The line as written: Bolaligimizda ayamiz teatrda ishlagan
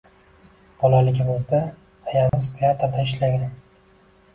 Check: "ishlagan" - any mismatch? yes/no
no